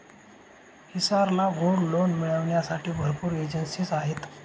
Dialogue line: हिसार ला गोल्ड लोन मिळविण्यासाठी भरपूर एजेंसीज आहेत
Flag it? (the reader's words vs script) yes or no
no